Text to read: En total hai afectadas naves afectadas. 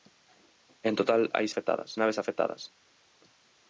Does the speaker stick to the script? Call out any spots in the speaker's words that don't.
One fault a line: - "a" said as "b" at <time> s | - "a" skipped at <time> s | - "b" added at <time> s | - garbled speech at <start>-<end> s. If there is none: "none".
none